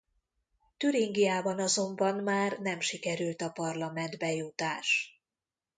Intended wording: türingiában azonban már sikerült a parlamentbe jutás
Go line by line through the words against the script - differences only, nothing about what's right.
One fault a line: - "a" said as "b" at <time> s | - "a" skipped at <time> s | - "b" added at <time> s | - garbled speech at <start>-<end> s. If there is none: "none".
- "nem" added at 2.6 s